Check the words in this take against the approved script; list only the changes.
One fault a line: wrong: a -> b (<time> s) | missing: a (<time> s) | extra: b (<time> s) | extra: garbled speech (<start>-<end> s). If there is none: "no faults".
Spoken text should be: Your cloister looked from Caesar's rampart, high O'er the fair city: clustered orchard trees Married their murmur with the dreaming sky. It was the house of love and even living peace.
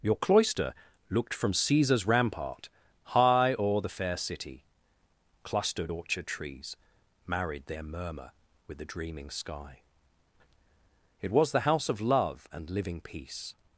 missing: even (12.7 s)